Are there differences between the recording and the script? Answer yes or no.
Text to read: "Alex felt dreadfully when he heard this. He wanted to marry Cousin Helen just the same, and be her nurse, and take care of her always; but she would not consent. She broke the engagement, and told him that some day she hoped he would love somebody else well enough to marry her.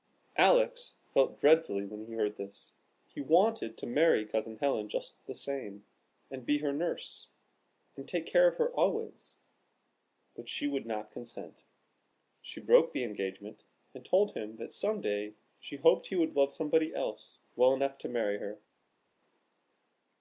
no